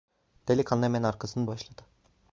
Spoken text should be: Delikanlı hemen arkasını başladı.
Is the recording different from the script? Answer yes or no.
no